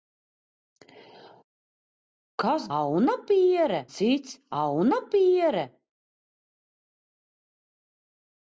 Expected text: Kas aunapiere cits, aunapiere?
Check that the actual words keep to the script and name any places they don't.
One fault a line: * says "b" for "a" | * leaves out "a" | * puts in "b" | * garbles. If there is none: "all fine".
all fine